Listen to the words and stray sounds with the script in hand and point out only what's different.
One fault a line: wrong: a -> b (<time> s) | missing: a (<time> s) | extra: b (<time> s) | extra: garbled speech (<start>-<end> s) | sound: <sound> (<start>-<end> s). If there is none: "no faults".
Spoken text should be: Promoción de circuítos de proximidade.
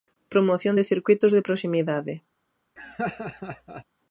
sound: laugh (2.8-3.8 s)